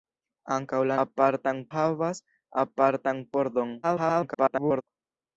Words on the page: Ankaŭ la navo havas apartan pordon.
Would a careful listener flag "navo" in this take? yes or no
yes